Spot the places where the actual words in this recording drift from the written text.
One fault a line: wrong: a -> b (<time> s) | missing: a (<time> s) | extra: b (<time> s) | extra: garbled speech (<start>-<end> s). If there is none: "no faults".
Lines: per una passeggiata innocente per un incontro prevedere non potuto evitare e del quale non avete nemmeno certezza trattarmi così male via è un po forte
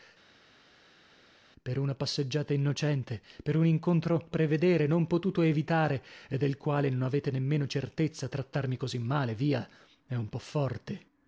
no faults